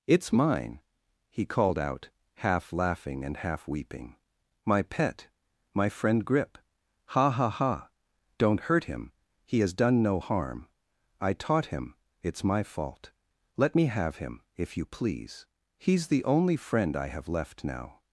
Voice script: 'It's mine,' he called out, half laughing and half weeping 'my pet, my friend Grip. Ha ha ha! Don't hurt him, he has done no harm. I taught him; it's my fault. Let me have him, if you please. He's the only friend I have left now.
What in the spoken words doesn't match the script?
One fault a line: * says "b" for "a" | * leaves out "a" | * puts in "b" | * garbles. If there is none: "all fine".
all fine